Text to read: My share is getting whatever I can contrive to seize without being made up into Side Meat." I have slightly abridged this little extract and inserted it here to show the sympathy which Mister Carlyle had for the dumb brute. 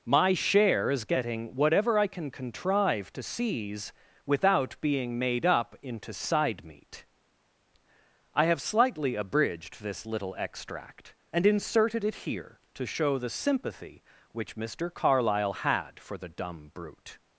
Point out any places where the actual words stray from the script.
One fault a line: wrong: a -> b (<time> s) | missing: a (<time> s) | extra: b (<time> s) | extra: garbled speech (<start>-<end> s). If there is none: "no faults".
no faults